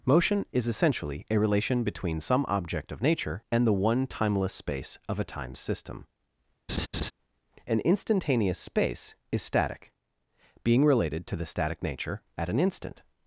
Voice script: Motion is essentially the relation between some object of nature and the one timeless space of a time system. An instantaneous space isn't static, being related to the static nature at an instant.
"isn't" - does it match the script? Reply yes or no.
no